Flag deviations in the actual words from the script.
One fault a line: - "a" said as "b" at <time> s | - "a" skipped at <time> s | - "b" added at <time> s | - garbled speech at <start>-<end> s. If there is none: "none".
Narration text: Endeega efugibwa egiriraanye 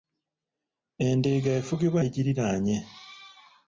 none